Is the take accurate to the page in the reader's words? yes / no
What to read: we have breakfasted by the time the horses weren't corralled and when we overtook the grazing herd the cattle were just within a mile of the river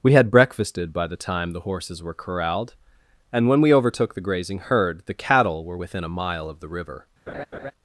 no